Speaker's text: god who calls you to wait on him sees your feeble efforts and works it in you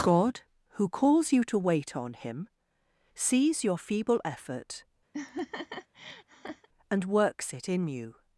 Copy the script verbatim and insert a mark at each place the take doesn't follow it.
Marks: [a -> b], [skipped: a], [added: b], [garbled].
god who calls you to wait on him sees your feeble [efforts -> effort] and works it in you